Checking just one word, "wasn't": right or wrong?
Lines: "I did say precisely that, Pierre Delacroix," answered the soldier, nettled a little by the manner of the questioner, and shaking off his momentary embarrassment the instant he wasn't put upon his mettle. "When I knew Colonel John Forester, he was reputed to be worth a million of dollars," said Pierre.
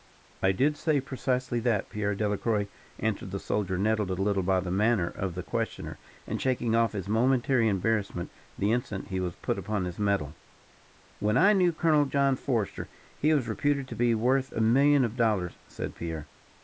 wrong